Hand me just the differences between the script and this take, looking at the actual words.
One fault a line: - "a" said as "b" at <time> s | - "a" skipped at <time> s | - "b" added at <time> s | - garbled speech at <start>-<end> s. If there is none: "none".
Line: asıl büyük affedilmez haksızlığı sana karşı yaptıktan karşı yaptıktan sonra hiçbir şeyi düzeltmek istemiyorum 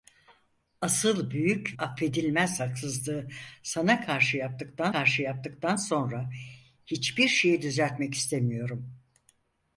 none